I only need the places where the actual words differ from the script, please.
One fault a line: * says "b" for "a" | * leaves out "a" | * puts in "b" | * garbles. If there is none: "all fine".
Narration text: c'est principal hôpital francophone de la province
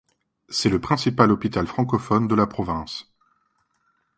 * puts in "le"